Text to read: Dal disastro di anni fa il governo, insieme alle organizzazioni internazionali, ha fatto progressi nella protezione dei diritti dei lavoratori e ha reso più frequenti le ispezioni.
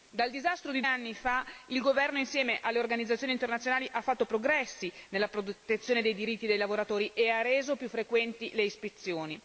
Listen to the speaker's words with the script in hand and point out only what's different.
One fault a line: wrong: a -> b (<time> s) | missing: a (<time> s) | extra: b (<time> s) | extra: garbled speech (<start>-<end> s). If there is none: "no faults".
no faults